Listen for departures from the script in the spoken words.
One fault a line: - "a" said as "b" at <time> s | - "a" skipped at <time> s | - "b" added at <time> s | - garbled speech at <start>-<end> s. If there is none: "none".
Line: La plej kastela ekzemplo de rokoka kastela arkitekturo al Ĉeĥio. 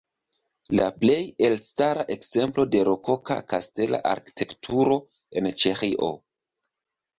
- "kastela" said as "elstara" at 1.5 s
- "al" said as "en" at 5.4 s